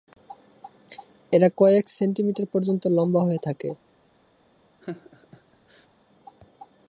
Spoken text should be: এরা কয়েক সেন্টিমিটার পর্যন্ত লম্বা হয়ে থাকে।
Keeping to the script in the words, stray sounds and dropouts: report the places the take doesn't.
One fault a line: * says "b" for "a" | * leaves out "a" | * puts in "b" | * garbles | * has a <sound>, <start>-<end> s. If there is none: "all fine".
* has a laugh, 4.8-5.9 s